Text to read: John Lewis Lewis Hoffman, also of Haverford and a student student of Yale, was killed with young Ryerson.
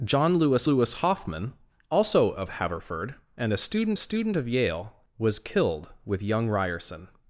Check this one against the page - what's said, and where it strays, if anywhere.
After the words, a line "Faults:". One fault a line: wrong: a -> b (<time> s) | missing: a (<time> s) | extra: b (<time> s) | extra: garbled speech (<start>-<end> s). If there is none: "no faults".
John Lewis Lewis Hoffman, also of Haverford and a student student of Yale, was killed with young Ryerson.
Faults:
no faults